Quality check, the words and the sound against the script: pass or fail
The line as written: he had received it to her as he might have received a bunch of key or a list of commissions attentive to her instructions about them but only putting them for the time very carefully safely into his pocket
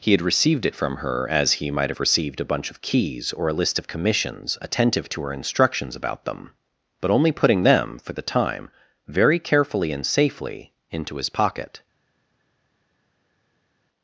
fail